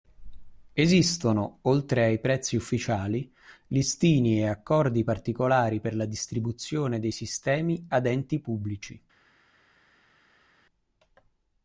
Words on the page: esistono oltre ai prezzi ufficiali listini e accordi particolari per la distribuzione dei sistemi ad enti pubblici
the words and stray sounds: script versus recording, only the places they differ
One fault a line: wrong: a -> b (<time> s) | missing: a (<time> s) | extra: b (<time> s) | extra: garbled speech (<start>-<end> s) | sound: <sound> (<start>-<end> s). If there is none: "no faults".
no faults